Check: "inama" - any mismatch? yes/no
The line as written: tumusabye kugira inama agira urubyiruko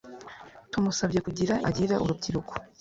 yes